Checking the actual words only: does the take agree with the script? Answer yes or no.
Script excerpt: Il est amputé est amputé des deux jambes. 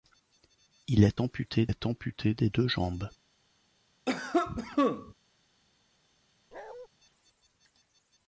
yes